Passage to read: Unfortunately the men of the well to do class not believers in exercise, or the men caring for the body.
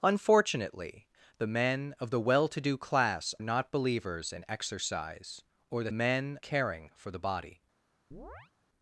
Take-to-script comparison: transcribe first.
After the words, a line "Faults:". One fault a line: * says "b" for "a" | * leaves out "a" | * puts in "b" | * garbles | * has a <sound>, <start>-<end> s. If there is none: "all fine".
Unfortunately the men of the well to do class not believers in exercise, or the men caring for the body.
Faults:
* has a chirp, 8.1-8.5 s